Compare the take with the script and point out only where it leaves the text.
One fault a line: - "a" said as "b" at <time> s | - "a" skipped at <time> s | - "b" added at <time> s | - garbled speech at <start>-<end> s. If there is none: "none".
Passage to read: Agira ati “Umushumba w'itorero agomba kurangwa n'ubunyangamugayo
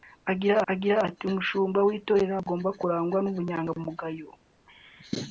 - "agira" added at 0.7 s